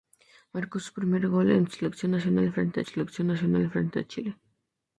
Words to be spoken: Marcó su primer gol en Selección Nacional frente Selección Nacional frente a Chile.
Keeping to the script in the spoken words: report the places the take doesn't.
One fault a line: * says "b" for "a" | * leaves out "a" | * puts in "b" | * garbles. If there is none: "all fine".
all fine